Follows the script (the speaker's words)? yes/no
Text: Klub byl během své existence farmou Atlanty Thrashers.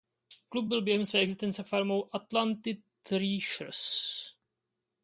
yes